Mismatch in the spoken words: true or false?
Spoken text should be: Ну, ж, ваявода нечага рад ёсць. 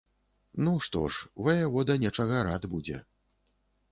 true